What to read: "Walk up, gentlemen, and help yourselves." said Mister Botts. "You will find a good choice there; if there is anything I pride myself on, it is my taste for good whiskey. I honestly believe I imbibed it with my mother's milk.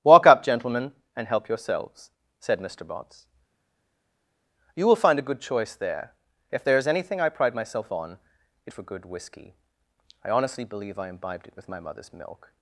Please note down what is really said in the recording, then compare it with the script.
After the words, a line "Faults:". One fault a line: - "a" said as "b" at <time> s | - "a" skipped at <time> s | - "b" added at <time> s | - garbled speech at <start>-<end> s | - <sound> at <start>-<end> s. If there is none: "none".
"Walk up, gentlemen, and help yourselves." said Mister Botts. "You will find a good choice there; if there is anything I pride myself on, it for good whiskey. I honestly believe I imbibed it with my mother's milk.
Faults:
- "is my taste" skipped at 8.7 s